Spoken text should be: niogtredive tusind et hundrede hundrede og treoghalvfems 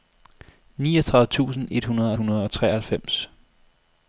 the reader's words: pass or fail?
pass